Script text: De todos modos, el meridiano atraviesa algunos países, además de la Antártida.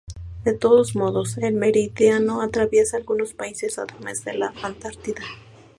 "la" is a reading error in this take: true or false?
false